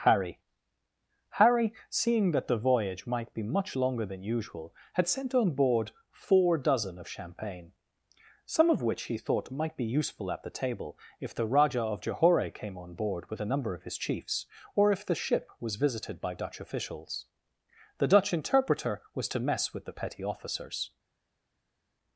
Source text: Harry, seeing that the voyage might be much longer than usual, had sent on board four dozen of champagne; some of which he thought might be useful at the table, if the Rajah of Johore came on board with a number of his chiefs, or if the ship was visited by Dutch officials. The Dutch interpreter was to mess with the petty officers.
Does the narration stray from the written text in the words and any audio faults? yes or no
yes